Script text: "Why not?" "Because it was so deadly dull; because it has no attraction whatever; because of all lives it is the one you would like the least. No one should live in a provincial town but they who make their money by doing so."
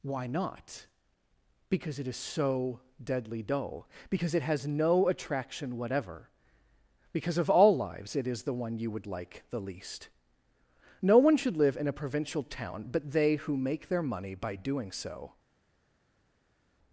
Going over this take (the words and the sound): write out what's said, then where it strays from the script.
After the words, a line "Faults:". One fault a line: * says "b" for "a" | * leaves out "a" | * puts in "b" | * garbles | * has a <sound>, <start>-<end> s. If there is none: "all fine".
"Why not?" "Because it is so deadly dull; because it has no attraction whatever; because of all lives it is the one you would like the least. No one should live in a provincial town but they who make their money by doing so."
Faults:
* says "is" for "was"